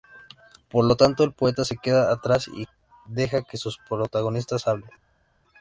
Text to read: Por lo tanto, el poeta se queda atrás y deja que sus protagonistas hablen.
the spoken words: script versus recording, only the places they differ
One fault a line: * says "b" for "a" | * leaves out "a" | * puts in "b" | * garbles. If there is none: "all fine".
all fine